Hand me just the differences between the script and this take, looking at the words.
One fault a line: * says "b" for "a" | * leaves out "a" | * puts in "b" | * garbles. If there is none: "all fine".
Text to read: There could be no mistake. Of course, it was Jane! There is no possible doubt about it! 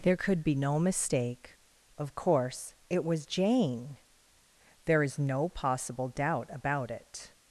all fine